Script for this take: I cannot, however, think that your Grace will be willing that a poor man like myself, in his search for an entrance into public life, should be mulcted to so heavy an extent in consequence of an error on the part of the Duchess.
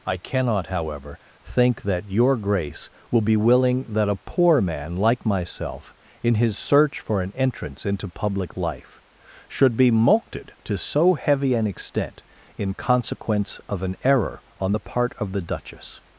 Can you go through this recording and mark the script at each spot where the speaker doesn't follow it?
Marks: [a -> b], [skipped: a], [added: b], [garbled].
I cannot, however, think that your Grace will be willing that a poor man like myself, in his search for an entrance into public life, should be mulcted to so heavy an extent in consequence of an error on the part of the Duchess.